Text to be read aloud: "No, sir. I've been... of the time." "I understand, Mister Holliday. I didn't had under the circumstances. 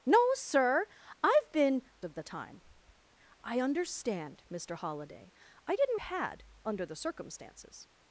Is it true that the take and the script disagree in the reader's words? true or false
false